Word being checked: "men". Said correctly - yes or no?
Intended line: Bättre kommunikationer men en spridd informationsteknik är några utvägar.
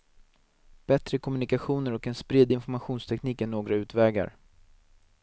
no